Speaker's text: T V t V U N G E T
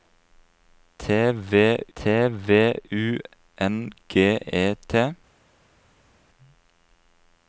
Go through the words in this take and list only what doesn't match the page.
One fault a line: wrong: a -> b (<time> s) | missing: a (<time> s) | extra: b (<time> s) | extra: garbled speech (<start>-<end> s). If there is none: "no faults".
no faults